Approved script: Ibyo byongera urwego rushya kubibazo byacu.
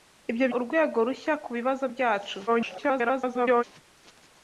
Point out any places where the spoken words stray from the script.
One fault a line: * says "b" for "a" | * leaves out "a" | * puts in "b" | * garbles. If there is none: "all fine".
* leaves out "byongera"
* garbles